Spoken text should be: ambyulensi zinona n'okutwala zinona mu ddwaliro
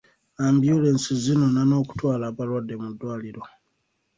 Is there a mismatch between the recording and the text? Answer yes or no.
yes